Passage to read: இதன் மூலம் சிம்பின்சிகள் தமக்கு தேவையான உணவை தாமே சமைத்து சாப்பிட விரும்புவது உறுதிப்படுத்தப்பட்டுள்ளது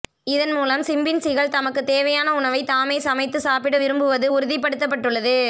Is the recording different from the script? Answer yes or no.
no